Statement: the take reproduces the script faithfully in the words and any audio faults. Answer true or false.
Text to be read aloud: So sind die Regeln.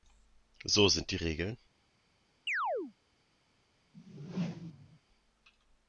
false